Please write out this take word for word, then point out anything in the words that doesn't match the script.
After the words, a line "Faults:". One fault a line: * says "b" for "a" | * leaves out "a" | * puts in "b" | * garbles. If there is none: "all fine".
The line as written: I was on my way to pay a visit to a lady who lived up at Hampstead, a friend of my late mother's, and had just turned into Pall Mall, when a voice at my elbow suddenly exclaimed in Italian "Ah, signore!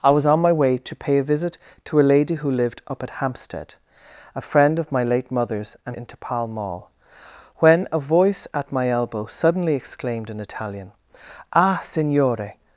I was on my way to pay a visit to a lady who lived up at Hampstead, a friend of my late mother's, and into Pall Mall, when a voice at my elbow suddenly exclaimed in Italian "Ah, signore!
Faults:
* leaves out "had just turned"